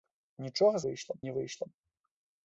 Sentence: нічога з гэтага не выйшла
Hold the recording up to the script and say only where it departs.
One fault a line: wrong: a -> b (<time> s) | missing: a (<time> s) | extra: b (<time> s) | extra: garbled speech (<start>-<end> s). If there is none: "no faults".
wrong: гэтага -> выйшла (0.8 s)